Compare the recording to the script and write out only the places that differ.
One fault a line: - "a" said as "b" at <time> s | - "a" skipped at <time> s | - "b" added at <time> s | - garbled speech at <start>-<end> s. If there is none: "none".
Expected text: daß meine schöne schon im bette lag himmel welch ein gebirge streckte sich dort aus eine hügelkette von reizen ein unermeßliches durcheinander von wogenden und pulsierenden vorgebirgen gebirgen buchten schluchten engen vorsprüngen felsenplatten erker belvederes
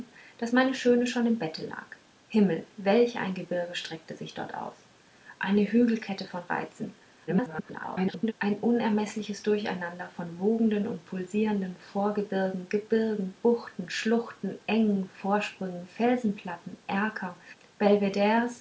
- garbled speech at 7.3-8.3 s